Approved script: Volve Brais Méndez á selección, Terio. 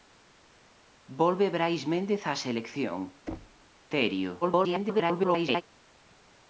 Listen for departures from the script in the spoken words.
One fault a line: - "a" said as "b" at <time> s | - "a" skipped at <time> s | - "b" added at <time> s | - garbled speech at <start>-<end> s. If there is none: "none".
- garbled speech at 4.4-5.6 s